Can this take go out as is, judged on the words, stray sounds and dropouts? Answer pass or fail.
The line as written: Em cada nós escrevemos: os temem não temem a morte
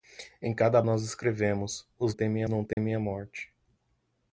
fail